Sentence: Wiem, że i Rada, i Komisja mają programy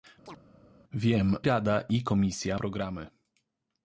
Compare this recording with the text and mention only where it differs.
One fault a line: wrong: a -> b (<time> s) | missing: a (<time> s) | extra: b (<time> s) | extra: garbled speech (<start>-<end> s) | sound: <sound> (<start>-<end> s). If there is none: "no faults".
sound: chirp (0.3-0.4 s)
missing: że i (1.3 s)
missing: mają (2.6 s)